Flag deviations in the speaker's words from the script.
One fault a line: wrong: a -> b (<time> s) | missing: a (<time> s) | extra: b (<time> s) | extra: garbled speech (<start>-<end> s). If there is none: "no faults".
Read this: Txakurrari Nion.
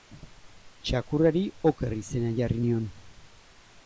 extra: Oker izena jarri (1.7 s)